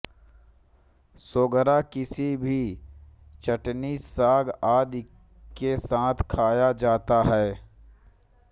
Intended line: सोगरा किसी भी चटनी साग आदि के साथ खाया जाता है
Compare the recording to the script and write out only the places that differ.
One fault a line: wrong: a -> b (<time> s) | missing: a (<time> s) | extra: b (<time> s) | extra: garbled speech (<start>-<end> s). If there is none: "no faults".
no faults